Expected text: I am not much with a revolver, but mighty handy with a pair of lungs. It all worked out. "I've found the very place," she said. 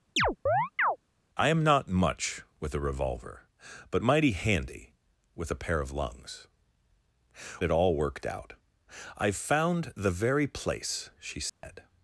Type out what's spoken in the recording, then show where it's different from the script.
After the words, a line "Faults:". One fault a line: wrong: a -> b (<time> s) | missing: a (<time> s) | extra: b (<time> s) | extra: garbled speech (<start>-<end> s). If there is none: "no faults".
I am not much with a revolver, but mighty handy with a pair of lungs. It all worked out. "I've found the very place," she said.
Faults:
no faults